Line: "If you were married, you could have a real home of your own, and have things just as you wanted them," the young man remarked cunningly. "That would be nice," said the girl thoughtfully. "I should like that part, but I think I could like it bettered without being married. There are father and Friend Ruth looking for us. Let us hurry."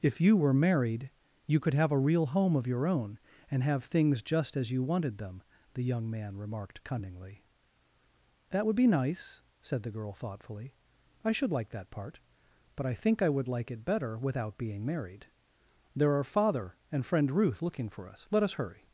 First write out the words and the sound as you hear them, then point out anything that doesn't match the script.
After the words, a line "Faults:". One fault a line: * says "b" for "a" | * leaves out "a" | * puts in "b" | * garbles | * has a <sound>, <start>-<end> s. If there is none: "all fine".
"If you were married, you could have a real home of your own, and have things just as you wanted them," the young man remarked cunningly. "That would be nice," said the girl thoughtfully. "I should like that part, but I think I would like it better without being married. There are father and Friend Ruth looking for us. Let us hurry."
Faults:
* says "would" for "could"
* says "better" for "bettered"